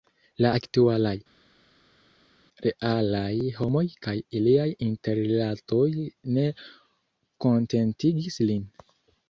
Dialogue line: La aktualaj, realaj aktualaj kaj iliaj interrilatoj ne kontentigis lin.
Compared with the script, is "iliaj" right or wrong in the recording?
right